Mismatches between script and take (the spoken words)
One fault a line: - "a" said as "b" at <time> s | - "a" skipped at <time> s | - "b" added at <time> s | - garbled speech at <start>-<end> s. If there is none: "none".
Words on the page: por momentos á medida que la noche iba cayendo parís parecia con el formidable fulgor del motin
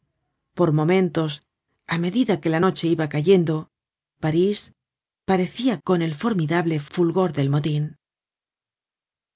none